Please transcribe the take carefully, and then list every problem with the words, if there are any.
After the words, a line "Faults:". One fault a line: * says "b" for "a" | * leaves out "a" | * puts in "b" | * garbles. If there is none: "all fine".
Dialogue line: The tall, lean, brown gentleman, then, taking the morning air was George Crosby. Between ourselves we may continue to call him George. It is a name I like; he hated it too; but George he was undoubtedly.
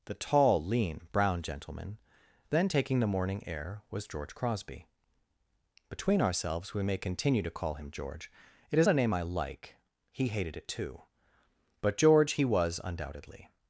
The tall, lean, brown gentleman, then, taking the morning air was George Crosby. Between ourselves we may continue to call him George. It is a name I like; he hated it too; but George he was undoubtedly.
Faults:
all fine